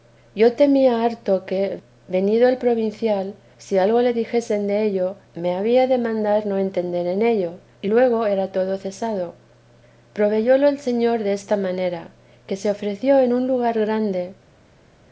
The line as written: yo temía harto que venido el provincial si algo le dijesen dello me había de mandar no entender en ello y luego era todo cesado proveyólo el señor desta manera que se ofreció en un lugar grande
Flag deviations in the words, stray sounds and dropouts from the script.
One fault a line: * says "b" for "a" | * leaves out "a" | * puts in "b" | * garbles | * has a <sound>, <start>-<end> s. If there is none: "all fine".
all fine